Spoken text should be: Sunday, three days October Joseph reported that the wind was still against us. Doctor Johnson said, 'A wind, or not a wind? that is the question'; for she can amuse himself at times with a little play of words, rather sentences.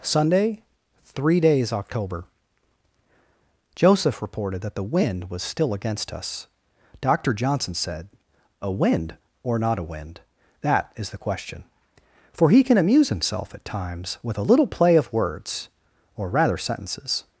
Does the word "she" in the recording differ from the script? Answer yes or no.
yes